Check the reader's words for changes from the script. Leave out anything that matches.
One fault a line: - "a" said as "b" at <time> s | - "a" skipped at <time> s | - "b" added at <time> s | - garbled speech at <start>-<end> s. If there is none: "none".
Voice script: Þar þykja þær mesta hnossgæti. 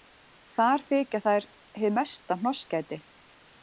- "hið" added at 1.8 s